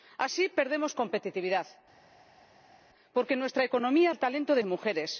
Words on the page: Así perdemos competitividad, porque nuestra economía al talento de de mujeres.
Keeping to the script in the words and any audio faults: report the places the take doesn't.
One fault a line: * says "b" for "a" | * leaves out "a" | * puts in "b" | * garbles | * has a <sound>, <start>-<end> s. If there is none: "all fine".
all fine